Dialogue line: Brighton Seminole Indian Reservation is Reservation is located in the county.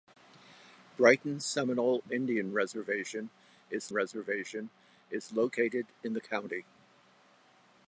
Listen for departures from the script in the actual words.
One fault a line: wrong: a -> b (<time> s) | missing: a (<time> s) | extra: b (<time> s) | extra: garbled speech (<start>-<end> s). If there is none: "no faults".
no faults